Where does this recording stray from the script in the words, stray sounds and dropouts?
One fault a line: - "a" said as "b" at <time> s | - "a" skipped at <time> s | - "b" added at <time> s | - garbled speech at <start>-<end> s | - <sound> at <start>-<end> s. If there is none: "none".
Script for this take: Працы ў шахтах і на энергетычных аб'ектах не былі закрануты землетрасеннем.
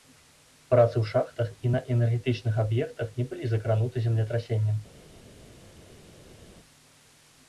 none